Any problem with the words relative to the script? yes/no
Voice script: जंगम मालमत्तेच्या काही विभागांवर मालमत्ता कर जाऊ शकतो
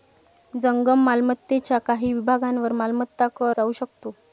no